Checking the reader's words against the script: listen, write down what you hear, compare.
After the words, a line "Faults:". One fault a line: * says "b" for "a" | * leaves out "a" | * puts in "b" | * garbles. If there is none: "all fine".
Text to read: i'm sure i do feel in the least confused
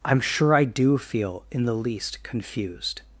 i'm sure i do feel in the least confused
Faults:
all fine